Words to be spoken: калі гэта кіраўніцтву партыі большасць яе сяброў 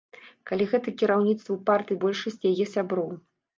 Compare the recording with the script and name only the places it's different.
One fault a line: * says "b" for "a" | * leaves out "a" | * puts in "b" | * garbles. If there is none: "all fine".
all fine